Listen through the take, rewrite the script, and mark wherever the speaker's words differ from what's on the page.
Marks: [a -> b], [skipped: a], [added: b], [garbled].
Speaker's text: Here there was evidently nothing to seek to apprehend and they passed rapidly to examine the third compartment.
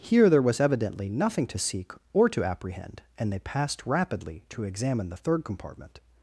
Here there was evidently nothing to seek [added: or] to apprehend and they passed rapidly to examine the third compartment.